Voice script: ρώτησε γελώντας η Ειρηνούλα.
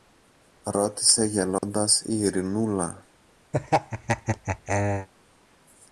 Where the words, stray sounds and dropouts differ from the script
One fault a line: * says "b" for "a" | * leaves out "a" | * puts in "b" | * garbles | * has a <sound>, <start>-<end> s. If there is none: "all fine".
* has a dropout, 1.6-1.6 s
* has a laugh, 3.5-5.1 s